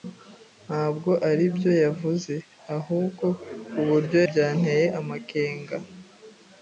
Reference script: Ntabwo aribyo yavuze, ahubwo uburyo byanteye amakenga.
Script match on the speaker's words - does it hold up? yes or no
yes